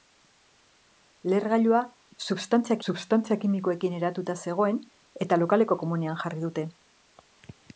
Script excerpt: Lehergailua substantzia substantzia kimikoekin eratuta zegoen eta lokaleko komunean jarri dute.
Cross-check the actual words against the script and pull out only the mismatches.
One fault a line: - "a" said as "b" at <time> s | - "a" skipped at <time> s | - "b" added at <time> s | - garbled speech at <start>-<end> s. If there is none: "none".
none